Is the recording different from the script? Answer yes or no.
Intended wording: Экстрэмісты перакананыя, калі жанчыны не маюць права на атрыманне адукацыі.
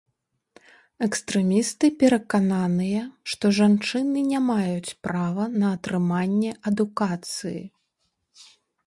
yes